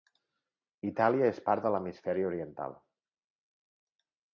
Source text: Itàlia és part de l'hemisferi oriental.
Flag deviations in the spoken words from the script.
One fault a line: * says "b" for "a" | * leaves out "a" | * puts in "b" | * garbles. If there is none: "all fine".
all fine